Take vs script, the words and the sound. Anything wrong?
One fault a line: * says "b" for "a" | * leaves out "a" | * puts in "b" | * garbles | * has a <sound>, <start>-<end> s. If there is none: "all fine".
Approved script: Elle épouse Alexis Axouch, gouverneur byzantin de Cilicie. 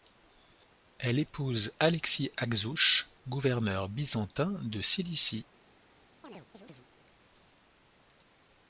* has a chirp, 6.2-6.9 s